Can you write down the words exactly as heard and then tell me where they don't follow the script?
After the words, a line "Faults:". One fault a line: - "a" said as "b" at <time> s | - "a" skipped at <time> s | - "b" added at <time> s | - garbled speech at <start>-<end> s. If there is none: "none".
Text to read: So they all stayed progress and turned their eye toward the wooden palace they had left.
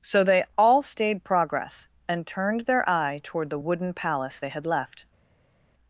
So they all stayed progress and turned their eye toward the wooden palace they had left.
Faults:
none